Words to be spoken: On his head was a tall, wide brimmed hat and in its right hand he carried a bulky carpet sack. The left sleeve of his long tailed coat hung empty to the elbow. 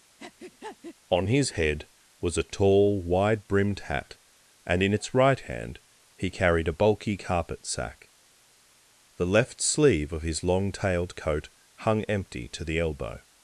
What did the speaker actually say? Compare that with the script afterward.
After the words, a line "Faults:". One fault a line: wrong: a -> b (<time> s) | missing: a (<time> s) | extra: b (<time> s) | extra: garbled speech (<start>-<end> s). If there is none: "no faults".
On his head was a tall, wide brimmed hat and in its right hand he carried a bulky carpet sack. The left sleeve of his long tailed coat hung empty to the elbow.
Faults:
no faults